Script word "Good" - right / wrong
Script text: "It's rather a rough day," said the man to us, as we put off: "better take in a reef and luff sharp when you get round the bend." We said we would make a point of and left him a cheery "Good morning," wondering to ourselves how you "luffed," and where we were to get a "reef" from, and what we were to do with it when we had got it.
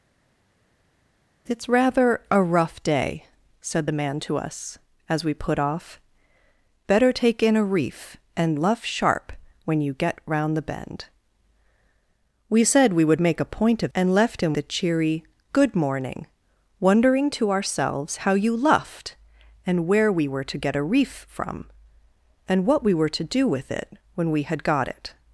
right